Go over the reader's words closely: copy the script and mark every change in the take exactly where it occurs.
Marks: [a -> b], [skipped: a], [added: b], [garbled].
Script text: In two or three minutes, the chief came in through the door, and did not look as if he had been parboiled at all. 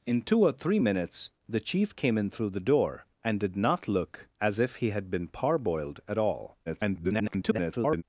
In two or three minutes, the chief came in through the door, and did not look as if he had been parboiled at all. [garbled]